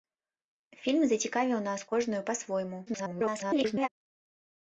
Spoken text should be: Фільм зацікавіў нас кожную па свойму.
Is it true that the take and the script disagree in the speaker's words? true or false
true